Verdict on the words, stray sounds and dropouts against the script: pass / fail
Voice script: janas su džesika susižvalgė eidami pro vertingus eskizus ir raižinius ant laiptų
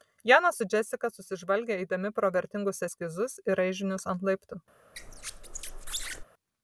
fail